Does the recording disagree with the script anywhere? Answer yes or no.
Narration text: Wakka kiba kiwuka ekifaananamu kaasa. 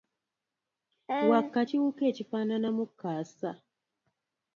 yes